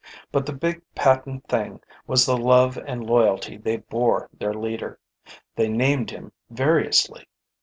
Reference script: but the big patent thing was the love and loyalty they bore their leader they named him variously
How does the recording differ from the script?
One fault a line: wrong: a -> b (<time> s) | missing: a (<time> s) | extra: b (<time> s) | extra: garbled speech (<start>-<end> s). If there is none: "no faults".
no faults